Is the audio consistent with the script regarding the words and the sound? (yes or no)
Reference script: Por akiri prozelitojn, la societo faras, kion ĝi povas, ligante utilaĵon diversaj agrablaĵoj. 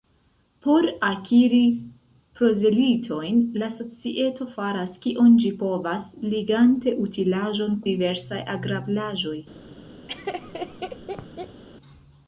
no